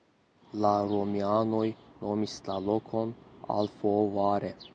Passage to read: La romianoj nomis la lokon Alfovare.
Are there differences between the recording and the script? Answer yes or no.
no